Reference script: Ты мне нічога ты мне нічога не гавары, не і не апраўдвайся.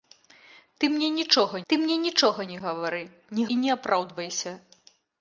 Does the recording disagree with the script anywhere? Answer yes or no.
no